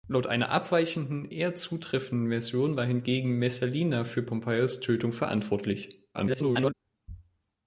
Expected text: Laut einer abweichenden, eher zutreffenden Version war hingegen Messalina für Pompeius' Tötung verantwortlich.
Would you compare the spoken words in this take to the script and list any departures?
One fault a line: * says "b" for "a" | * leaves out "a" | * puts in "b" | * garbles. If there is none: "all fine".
* garbles